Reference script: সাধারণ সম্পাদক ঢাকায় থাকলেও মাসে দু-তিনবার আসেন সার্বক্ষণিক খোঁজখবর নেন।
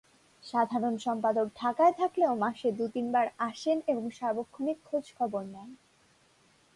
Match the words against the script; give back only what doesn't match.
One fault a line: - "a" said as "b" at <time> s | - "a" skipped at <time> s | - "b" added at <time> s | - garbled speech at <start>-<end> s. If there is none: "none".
- "এবং" added at 3.9 s